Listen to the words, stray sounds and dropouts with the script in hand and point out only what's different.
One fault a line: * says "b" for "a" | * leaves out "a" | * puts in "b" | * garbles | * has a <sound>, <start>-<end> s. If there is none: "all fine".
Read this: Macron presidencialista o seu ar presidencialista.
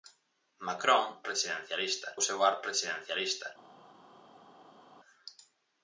all fine